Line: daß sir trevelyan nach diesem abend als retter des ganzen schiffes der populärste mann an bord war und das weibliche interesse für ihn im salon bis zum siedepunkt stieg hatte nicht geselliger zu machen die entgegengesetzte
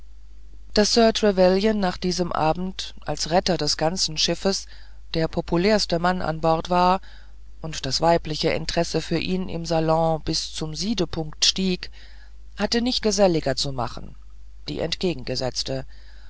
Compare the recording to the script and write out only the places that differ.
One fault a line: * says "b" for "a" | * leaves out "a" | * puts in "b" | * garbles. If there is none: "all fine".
all fine